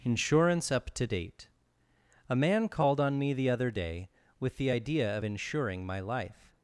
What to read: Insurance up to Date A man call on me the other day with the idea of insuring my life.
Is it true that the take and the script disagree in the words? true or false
true